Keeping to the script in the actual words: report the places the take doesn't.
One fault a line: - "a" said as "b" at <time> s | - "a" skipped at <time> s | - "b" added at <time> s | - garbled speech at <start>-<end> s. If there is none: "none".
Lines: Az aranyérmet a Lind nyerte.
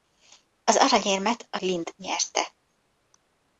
none